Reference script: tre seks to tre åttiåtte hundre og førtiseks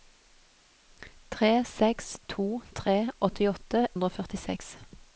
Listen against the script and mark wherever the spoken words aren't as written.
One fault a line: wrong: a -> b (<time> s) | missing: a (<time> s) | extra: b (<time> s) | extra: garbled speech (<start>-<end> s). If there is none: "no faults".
no faults